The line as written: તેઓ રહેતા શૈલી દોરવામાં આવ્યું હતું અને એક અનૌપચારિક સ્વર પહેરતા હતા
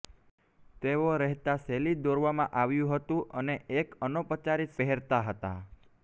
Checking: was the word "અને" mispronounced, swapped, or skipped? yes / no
no